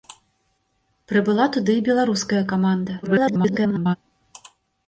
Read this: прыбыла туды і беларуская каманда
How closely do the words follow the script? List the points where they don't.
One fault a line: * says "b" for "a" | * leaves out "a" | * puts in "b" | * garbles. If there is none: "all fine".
* garbles